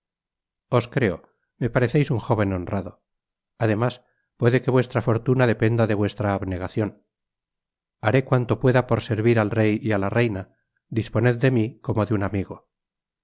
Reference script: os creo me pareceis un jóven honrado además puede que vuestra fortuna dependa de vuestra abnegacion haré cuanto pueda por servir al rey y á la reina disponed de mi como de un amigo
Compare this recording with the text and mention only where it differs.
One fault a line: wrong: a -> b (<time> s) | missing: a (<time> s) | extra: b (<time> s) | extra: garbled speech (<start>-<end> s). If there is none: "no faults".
no faults